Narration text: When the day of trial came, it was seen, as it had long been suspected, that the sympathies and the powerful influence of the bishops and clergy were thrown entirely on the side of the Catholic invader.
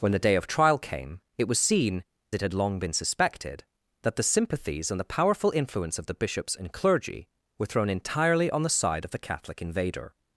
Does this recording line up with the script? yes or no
no